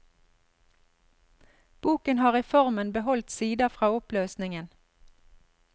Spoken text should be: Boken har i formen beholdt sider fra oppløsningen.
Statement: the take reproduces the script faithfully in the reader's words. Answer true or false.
true